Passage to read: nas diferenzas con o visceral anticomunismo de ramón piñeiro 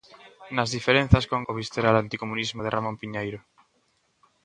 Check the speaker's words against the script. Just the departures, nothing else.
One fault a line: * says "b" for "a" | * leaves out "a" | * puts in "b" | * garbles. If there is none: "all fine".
all fine